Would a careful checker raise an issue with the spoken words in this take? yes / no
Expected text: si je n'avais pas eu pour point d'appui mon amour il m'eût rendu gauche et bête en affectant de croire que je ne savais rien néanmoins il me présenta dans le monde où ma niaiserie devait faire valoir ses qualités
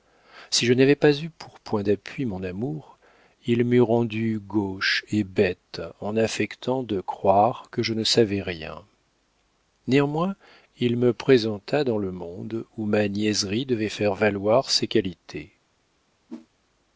no